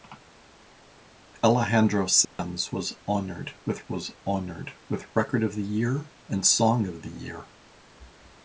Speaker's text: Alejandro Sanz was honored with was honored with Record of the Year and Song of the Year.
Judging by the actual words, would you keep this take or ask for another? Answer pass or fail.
pass